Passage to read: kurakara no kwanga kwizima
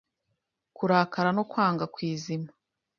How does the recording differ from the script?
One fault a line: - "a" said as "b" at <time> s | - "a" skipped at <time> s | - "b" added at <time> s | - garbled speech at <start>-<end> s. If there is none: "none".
none